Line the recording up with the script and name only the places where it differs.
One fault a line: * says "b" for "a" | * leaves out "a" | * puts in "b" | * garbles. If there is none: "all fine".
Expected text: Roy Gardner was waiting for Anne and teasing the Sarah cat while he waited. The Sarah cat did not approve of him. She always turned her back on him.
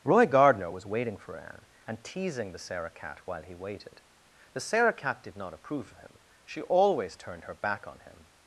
all fine